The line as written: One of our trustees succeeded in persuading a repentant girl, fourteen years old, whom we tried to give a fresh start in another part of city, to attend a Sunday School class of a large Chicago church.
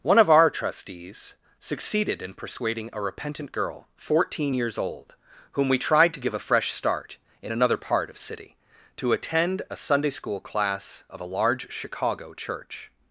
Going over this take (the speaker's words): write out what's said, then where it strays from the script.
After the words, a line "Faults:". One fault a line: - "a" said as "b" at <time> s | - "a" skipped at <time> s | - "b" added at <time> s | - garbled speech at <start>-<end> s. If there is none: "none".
One of our trustees succeeded in persuading a repentant girl, fourteen years old, whom we tried to give a fresh start in another part of city, to attend a Sunday School class of a large Chicago church.
Faults:
none